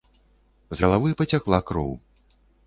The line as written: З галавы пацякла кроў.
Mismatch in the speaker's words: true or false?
false